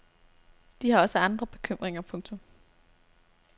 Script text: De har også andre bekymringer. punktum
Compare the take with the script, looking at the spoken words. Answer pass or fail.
pass